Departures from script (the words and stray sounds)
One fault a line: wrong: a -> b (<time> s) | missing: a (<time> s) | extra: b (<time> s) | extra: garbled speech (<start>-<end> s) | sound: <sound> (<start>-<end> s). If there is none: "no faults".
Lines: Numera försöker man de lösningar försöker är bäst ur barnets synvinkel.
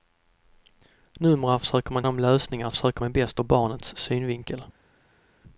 no faults